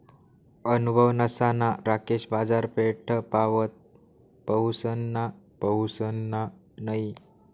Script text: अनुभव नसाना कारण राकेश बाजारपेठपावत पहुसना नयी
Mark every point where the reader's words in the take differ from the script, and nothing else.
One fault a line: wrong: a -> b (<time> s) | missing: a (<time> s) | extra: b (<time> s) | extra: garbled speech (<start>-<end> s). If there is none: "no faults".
missing: कारण (1.7 s)
extra: पहुसना (5.6 s)